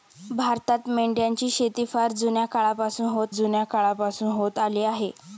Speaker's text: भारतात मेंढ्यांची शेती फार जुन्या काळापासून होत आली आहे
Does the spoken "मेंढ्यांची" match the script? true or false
true